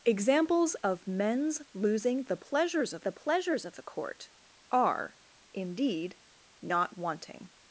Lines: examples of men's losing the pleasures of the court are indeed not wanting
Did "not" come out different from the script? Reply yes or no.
no